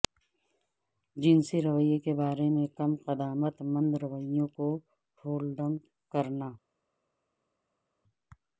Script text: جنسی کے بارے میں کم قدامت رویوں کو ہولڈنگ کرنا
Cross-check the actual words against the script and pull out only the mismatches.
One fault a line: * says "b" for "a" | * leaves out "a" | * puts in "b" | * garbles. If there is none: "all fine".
* puts in "رویے"
* puts in "مند"